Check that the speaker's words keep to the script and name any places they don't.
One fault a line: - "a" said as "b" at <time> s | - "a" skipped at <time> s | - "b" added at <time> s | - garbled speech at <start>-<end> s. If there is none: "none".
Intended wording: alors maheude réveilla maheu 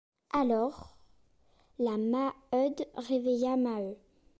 - "la" added at 1.8 s